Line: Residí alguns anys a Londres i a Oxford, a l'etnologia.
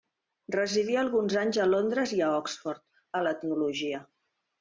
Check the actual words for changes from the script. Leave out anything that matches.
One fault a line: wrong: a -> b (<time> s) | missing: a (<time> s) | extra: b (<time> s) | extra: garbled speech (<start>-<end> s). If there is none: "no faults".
no faults